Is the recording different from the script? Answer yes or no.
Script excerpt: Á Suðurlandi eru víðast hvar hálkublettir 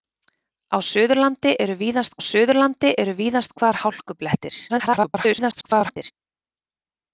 yes